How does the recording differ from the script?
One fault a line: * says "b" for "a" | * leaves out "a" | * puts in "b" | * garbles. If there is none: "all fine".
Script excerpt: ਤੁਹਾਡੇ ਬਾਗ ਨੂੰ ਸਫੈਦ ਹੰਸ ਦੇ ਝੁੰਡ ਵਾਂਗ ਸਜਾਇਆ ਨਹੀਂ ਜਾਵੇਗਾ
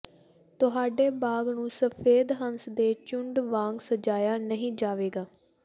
all fine